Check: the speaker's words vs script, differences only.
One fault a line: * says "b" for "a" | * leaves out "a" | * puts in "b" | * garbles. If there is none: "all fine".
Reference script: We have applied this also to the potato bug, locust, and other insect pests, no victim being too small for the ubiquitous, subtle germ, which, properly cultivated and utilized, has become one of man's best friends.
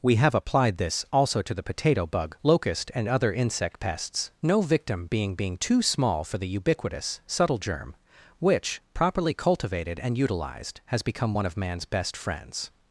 * puts in "being"